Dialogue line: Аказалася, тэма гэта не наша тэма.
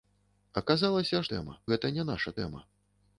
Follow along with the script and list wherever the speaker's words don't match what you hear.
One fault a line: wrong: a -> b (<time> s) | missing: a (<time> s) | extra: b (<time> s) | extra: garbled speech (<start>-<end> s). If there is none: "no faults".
no faults